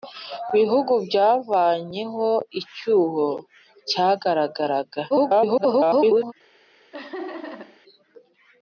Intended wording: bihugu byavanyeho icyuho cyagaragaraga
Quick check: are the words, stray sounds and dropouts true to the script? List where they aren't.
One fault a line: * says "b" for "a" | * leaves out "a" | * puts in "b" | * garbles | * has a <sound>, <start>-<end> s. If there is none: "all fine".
* garbles
* has a laugh, 6.9-7.8 s